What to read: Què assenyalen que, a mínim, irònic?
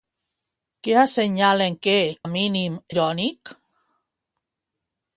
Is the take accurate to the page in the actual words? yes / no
yes